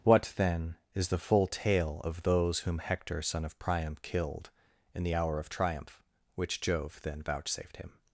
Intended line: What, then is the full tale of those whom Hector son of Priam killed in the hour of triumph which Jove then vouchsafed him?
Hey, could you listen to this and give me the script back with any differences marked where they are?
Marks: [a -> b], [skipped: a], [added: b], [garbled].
What, then is the full tale of those whom Hector son of Priam killed in the hour of triumph which Jove then vouchsafed him?